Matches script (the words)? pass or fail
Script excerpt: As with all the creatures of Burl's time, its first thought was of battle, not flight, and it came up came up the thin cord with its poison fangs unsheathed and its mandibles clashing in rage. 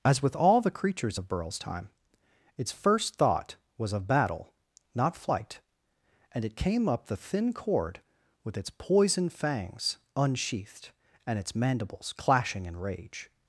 fail